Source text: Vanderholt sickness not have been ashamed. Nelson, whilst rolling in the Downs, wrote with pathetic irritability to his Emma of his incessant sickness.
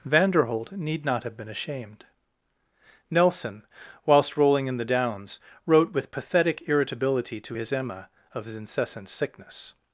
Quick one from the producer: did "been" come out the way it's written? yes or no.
yes